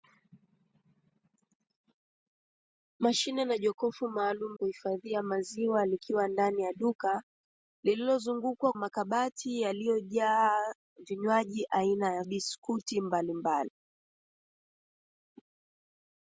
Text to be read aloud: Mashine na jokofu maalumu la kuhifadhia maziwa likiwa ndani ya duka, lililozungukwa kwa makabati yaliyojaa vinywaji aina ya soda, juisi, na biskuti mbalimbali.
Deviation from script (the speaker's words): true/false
true